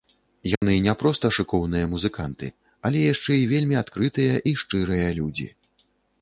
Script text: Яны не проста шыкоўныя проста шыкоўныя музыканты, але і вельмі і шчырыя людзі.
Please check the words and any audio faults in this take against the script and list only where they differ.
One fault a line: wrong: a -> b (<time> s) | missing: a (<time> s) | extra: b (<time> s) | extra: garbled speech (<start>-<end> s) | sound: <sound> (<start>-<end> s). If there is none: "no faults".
sound: dropout (0.6-0.6 s)
missing: проста шыкоўныя (1.9 s)
extra: яшчэ (3.1 s)
extra: адкрытыя (3.8 s)